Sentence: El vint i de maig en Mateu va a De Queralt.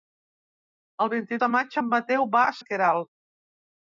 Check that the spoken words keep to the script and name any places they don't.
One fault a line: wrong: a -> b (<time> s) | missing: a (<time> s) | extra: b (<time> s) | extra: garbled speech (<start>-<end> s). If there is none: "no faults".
no faults